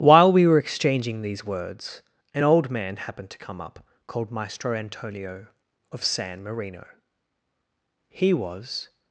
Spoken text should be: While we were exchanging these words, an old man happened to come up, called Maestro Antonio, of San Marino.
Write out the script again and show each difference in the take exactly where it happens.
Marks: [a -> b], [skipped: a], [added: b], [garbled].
While we were exchanging these words, an old man happened to come up, called Maestro Antonio, of San Marino. [added: He was]